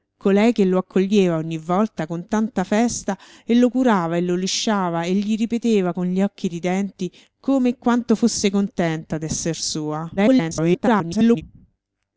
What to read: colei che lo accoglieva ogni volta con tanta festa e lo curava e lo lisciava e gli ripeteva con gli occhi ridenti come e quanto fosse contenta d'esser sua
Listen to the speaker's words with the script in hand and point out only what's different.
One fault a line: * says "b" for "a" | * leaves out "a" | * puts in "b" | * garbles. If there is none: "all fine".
* garbles